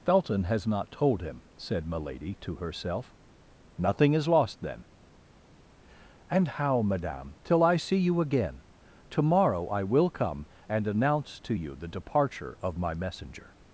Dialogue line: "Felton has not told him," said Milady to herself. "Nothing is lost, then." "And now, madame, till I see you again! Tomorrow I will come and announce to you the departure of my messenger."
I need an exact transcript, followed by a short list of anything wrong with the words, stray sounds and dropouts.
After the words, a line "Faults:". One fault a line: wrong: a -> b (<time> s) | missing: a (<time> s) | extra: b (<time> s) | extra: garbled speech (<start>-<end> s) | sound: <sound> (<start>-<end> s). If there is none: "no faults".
"Felton has not told him," said Milady to herself. "Nothing is lost, then." "And how, madame, till I see you again! Tomorrow I will come and announce to you the departure of my messenger."
Faults:
wrong: now -> how (6.5 s)